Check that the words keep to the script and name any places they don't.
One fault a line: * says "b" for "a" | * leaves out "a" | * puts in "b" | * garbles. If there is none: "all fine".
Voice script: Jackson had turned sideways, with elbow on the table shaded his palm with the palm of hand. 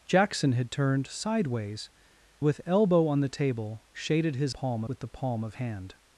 all fine